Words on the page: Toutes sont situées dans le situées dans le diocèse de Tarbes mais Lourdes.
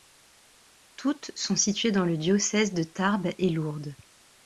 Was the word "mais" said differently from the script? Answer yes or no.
yes